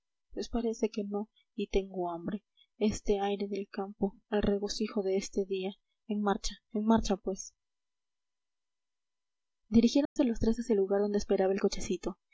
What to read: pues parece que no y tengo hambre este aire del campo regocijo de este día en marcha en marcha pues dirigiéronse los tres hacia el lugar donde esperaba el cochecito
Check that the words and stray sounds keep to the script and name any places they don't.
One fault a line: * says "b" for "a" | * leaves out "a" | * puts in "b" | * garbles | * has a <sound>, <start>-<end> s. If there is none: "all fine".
* puts in "el"
* has a dropout, 10.1-10.2 s